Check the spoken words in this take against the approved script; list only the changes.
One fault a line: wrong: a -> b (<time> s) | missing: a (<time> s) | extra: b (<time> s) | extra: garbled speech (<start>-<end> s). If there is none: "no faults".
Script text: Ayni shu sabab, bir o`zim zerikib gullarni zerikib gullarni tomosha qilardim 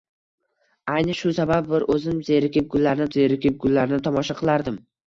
no faults